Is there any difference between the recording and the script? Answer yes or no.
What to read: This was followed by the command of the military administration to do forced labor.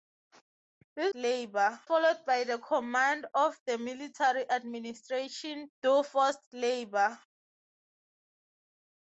yes